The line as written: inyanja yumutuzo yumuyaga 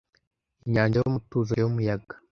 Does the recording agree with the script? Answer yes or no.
yes